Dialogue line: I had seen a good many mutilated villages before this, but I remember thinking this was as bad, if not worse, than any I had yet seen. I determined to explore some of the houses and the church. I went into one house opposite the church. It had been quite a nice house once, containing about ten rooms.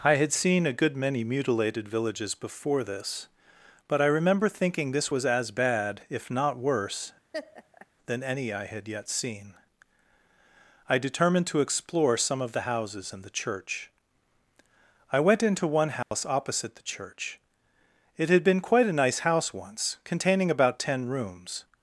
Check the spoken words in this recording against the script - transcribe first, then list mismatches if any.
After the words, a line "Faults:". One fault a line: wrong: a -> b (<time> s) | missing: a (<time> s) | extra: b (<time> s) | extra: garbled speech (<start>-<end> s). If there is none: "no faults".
I had seen a good many mutilated villages before this, but I remember thinking this was as bad, if not worse, than any I had yet seen. I determined to explore some of the houses and the church. I went into one house opposite the church. It had been quite a nice house once, containing about ten rooms.
Faults:
no faults